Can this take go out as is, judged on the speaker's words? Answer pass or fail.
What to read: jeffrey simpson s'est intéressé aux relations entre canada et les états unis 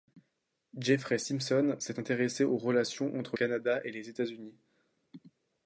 pass